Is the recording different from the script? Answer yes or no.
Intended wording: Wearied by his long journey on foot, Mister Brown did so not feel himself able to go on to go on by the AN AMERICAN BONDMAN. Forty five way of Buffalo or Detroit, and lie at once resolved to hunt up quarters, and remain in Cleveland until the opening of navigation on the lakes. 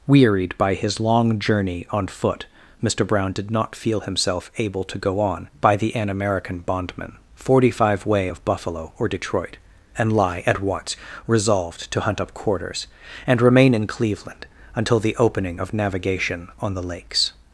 yes